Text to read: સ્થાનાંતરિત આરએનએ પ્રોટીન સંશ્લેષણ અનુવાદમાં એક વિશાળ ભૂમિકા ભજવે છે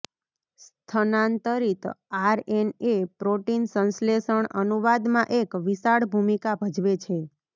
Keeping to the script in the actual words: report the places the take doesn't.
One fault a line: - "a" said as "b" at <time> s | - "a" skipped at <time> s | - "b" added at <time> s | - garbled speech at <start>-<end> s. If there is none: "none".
none